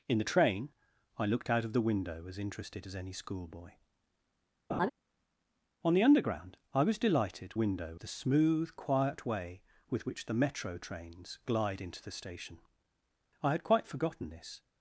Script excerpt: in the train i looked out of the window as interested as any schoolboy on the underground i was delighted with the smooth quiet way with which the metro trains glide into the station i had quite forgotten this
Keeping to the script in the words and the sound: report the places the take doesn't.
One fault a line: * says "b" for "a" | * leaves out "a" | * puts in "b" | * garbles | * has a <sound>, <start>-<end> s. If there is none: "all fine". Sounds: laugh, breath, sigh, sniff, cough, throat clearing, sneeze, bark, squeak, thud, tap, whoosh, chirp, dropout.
* has a laugh, 4.7-4.9 s
* says "window" for "with"